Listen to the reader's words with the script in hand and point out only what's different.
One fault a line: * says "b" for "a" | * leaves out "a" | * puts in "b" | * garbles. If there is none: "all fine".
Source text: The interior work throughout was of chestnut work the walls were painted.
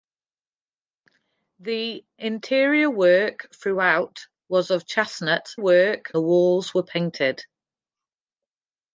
all fine